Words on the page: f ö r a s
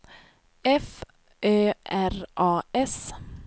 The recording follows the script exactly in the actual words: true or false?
true